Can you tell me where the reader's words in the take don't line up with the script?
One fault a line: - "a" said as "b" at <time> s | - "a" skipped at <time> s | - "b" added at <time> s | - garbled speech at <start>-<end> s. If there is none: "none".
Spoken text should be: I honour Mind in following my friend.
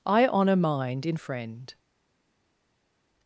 - "following my" skipped at 1.1 s